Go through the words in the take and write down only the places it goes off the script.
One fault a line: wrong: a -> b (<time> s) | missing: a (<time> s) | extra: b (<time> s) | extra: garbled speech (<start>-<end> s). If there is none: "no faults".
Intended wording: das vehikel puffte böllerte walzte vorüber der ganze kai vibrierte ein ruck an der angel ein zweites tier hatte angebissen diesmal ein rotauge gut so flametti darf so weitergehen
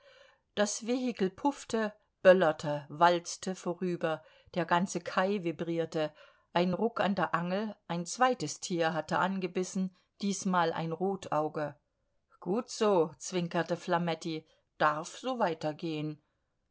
extra: zwinkerte (13.2 s)